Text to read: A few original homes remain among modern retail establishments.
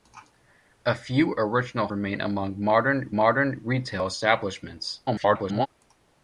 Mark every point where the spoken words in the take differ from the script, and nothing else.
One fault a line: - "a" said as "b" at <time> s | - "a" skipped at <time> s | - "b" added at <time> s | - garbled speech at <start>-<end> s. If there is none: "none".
- "homes" skipped at 1.9 s
- "modern" added at 3.1 s
- garbled speech at 5.1-5.7 s